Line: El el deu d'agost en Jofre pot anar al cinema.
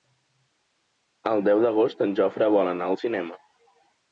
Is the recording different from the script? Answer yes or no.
yes